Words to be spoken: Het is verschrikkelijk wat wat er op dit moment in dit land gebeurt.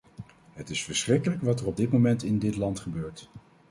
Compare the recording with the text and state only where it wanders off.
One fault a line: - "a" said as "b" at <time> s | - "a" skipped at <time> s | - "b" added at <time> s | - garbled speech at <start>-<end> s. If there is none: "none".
- "wat" skipped at 1.6 s